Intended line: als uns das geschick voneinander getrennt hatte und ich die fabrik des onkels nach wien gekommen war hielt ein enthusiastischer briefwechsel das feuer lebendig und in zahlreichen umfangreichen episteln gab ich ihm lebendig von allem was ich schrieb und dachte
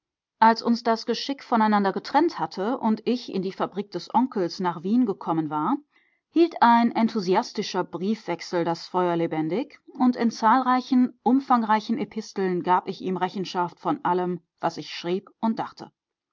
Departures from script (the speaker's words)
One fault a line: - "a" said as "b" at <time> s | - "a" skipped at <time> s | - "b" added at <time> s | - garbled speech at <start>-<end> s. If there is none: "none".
- "in" added at 3.3 s
- "lebendig" said as "rechenschaft" at 13.2 s